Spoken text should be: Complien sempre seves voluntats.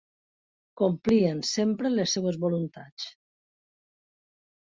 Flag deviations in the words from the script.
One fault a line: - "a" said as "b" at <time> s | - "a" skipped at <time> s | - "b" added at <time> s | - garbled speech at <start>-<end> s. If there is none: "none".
- "les" added at 2.0 s